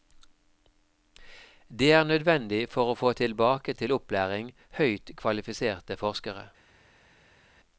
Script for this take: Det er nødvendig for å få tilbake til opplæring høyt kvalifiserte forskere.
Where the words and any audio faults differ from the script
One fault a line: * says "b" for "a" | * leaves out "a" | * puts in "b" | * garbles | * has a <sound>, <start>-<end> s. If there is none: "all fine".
all fine